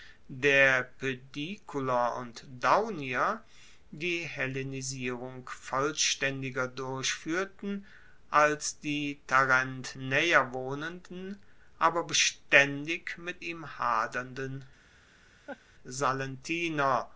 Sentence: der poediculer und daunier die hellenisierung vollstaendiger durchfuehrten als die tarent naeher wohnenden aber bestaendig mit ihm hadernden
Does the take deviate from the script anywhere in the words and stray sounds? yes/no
yes